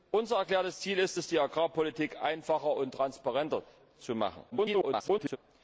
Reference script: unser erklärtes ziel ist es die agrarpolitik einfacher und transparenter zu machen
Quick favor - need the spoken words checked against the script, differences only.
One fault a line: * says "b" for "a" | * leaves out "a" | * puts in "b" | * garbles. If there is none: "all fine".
* garbles